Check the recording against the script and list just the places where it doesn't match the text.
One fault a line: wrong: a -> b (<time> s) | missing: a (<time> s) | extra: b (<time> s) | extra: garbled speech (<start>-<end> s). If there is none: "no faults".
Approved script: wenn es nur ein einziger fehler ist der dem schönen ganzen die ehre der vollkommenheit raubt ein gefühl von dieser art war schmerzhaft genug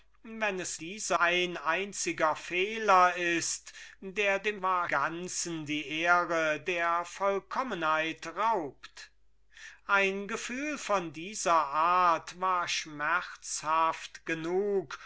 wrong: nur -> dieser (0.8 s)
wrong: schönen -> war (4.6 s)